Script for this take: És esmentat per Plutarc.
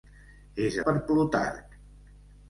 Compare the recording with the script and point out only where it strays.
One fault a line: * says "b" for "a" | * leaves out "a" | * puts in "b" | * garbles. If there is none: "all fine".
* leaves out "esmentat"